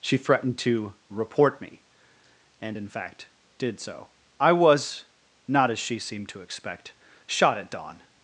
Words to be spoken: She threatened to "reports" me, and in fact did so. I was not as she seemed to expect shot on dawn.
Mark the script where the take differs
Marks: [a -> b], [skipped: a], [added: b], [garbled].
She threatened to ["reports" -> report] me, and in fact did so. I was not as she seemed to expect shot [on -> at] dawn.